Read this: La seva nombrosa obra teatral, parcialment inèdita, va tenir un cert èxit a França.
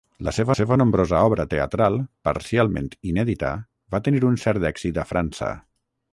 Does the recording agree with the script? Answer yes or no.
no